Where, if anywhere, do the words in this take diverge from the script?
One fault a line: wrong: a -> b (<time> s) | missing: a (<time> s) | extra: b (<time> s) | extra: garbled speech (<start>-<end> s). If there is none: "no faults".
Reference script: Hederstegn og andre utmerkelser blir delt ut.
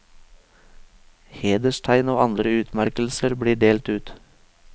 no faults